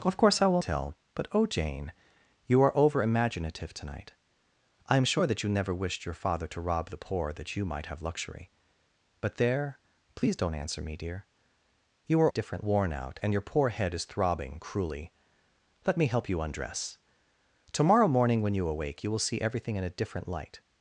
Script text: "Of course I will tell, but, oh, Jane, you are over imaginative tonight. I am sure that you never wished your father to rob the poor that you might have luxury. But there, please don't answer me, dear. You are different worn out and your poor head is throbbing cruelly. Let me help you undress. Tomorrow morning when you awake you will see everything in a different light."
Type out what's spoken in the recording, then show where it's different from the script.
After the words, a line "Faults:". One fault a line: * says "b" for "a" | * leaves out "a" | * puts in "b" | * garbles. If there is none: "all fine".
"Of course I will tell, but, oh, Jane, you are over imaginative tonight. I am sure that you never wished your father to rob the poor that you might have luxury. But there, please don't answer me, dear. You are different worn out and your poor head is throbbing cruelly. Let me help you undress. Tomorrow morning when you awake you will see everything in a different light."
Faults:
all fine